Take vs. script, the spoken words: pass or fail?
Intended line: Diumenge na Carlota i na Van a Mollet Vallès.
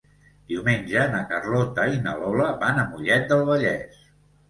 fail